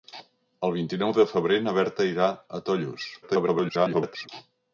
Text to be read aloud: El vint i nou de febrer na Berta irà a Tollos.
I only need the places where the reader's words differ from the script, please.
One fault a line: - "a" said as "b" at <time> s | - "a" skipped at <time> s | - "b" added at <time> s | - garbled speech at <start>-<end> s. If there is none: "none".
- garbled speech at 3.2-4.3 s